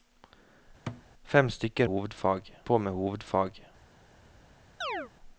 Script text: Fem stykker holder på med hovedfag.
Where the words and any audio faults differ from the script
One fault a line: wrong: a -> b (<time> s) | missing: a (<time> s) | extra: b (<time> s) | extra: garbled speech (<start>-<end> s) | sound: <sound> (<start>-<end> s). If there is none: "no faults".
sound: thud (0.9-1.0 s)
wrong: holder -> hovedfag (1.8 s)
sound: chirp (4.8-5.1 s)